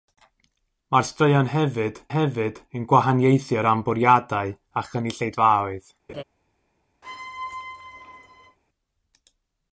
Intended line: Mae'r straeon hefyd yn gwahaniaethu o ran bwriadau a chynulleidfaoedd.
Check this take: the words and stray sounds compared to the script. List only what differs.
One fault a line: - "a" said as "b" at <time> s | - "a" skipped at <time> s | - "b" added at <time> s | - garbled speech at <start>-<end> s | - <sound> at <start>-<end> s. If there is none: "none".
- "hefyd" added at 2.1 s
- laugh at 6.1-6.2 s
- squeak at 7.0-8.6 s